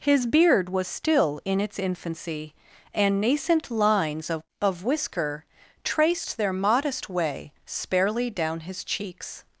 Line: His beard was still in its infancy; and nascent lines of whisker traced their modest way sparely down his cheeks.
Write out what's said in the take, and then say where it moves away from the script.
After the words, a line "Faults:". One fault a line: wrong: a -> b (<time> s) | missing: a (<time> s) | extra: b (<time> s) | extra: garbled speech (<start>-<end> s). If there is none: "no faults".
His beard was still in its infancy; and nascent lines of of whisker traced their modest way sparely down his cheeks.
Faults:
extra: of (4.6 s)